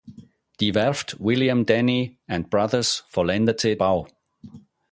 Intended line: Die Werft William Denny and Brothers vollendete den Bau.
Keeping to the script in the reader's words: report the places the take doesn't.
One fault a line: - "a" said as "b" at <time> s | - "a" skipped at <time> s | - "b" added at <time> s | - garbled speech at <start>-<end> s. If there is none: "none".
- "den" skipped at 3.8 s